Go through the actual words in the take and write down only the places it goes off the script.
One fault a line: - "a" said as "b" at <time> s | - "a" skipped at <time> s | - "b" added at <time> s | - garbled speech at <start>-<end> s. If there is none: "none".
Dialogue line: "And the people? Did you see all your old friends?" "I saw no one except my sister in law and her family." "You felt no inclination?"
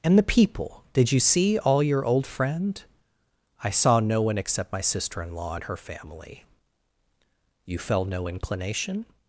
- "friends" said as "friend" at 2.2 s